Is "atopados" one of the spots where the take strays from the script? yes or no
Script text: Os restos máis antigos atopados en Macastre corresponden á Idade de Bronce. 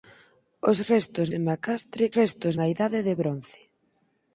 yes